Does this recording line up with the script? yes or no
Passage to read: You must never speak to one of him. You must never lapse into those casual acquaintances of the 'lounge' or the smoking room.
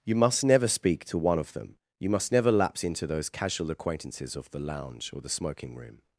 no